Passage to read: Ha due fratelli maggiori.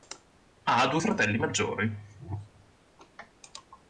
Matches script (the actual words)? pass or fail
pass